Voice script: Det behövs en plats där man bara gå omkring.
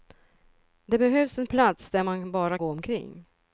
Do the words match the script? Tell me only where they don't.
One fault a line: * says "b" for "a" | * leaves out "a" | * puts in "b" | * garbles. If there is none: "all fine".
all fine